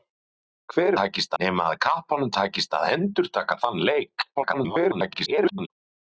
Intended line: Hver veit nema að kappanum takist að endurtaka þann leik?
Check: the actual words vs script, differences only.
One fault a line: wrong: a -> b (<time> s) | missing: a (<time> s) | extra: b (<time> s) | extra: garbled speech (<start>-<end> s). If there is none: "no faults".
wrong: veit -> takist (1.0 s)
extra: garbled speech (4.4-5.7 s)